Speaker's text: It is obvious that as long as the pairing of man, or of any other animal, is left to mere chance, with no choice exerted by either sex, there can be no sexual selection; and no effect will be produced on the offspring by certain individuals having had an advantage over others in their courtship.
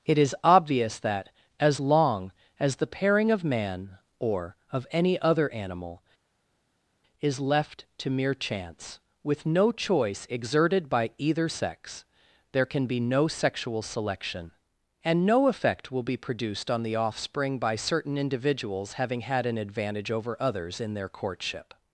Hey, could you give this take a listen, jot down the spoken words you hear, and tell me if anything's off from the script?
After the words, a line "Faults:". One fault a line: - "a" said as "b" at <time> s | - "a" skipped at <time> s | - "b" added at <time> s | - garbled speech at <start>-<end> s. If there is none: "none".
It is obvious that as long as the pairing of man, or of any other animal, is left to mere chance, with no choice exerted by either sex, there can be no sexual selection; and no effect will be produced on the offspring by certain individuals having had an advantage over others in their courtship.
Faults:
none